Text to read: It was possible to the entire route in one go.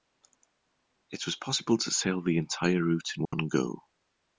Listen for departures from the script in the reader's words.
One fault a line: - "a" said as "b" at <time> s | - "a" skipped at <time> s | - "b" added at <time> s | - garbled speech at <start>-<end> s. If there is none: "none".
- "sail" added at 1.9 s